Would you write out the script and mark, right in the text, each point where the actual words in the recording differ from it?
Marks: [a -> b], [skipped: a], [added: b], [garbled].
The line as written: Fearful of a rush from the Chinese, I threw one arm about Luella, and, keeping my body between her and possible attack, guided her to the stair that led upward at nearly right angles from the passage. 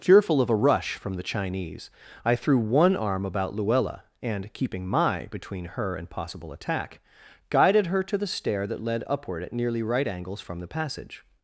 Fearful of a rush from the Chinese, I threw one arm about Luella, and, keeping my [skipped: body] between her and possible attack, guided her to the stair that led upward at nearly right angles from the passage.